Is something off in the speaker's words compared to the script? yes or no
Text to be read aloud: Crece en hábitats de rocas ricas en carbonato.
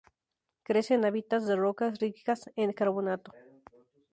no